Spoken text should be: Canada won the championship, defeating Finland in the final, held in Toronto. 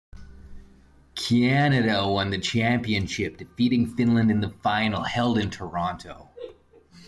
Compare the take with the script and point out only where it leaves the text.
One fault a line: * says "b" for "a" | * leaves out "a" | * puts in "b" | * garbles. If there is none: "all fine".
all fine